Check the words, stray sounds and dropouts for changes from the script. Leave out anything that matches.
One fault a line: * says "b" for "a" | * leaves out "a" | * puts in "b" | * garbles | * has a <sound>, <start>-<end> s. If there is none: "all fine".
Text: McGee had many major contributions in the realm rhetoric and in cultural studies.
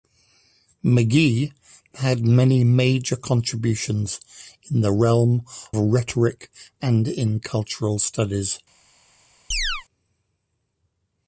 * has a chirp, 9.5-9.8 s